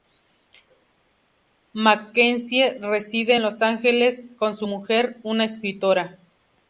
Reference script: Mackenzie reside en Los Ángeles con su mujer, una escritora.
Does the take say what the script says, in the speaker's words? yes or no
yes